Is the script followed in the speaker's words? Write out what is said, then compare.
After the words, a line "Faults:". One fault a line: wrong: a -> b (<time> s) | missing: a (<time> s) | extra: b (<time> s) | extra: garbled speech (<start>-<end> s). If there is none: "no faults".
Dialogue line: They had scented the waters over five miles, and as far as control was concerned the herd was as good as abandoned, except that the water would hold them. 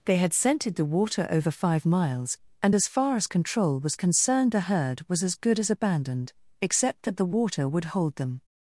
They had scented the water over five miles, and as far as control was concerned the herd was as good as abandoned, except that the water would hold them.
Faults:
wrong: waters -> water (0.8 s)